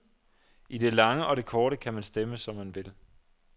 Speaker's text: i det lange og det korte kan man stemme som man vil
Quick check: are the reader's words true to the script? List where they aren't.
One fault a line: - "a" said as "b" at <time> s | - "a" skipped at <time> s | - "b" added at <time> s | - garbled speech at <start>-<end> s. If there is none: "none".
none